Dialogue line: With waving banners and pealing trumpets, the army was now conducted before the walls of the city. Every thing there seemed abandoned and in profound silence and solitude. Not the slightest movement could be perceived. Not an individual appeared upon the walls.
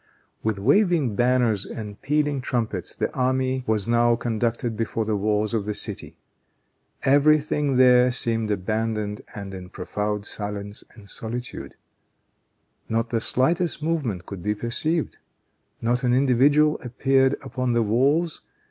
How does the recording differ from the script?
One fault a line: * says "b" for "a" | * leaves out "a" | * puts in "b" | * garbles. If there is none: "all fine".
all fine